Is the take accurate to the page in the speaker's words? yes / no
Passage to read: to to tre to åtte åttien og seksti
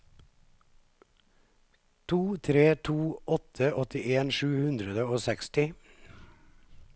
no